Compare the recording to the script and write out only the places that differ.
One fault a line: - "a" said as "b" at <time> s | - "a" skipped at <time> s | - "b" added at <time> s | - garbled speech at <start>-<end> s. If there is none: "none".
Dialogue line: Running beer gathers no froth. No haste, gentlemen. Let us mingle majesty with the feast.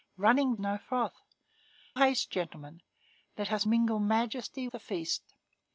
- "beer gathers" skipped at 0.6 s
- "No" skipped at 1.2 s
- "with" skipped at 4.7 s